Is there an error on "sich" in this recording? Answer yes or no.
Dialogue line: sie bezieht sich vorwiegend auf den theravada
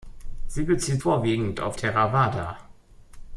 yes